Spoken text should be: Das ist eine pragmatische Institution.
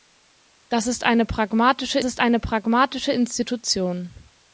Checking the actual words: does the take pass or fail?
fail